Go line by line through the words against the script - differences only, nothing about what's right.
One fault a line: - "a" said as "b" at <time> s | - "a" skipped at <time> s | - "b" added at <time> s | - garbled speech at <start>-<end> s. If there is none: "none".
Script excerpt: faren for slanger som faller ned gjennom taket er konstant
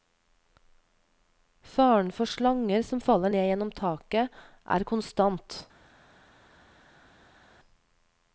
none